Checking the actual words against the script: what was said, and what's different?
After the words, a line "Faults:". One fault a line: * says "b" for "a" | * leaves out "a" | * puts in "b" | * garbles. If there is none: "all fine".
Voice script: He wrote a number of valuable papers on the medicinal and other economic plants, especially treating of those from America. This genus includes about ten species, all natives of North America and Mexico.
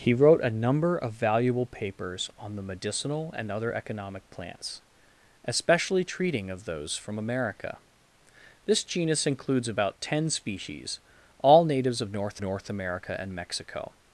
He wrote a number of valuable papers on the medicinal and other economic plants, especially treating of those from America. This genus includes about ten species, all natives of North North America and Mexico.
Faults:
* puts in "North"